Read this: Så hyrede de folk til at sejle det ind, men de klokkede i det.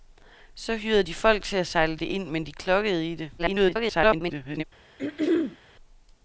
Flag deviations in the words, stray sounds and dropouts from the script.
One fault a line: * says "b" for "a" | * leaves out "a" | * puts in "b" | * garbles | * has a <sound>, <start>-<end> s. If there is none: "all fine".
* garbles
* has a throat clearing, 5.0-5.6 s